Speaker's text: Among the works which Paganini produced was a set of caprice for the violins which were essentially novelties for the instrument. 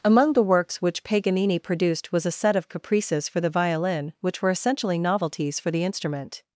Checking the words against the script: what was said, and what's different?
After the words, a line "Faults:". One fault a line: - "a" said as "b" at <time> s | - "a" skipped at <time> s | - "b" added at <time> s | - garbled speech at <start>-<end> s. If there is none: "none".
Among the works which Paganini produced was a set of caprices for the violin which were essentially novelties for the instrument.
Faults:
- "caprice" said as "caprices" at 2.7 s
- "violins" said as "violin" at 3.5 s